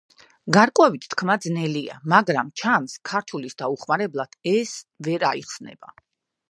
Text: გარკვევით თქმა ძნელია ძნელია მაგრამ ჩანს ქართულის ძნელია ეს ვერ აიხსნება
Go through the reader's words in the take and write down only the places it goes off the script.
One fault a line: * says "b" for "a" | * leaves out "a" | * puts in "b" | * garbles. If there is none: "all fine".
* leaves out "ძნელია"
* says "დაუხმარებლად" for "ძნელია"